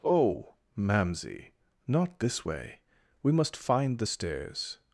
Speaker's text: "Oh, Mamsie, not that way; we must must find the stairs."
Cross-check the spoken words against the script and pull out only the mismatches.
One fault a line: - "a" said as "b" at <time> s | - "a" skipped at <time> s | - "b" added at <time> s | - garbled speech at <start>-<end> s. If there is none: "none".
- "that" said as "this" at 2.2 s
- "must" skipped at 3.6 s